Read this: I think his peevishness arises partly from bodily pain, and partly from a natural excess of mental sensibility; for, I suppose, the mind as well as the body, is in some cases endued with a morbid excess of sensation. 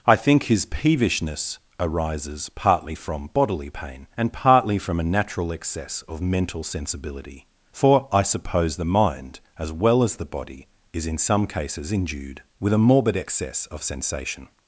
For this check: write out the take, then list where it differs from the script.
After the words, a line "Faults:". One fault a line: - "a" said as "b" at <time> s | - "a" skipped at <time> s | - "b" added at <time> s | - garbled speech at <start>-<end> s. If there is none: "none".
I think his peevishness arises partly from bodily pain, and partly from a natural excess of mental sensibility; for, I suppose, the mind as well as the body, is in some cases endued with a morbid excess of sensation.
Faults:
none